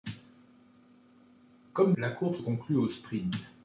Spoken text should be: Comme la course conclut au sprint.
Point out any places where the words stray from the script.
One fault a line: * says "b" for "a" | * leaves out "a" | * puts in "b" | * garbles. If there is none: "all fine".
all fine